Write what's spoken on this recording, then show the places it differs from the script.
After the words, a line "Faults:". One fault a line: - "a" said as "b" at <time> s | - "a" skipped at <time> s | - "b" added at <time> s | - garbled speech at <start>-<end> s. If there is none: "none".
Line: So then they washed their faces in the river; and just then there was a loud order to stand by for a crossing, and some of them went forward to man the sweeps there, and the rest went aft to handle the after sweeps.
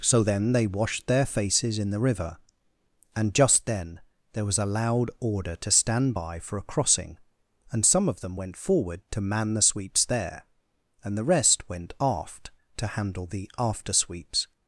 So then they washed their faces in the river; and just then there was a loud order to stand by for a crossing, and some of them went forward to man the sweeps there, and the rest went aft to handle the after sweeps.
Faults:
none